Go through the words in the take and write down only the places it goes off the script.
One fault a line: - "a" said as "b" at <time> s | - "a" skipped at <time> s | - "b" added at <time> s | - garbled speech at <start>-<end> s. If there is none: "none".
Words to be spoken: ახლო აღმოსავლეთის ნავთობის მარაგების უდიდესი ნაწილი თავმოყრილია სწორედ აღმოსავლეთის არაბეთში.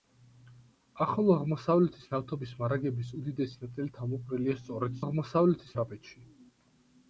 none